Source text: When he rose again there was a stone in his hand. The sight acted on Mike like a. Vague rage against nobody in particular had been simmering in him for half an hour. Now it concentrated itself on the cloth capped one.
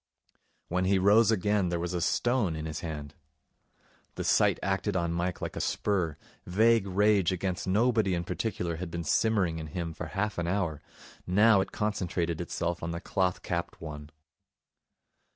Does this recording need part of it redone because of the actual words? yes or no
yes